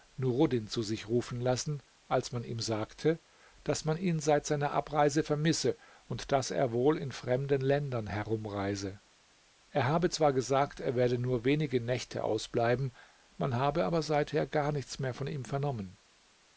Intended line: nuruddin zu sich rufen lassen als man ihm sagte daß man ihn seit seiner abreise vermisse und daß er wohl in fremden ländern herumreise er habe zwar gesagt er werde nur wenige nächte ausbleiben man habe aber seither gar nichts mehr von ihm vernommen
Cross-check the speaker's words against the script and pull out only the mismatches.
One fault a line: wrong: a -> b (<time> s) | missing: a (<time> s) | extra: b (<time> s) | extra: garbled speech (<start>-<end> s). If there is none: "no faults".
no faults